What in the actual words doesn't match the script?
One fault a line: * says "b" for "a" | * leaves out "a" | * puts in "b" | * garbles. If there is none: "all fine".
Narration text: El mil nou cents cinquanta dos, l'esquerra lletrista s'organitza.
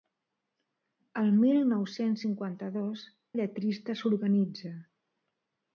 * leaves out "l'esquerra"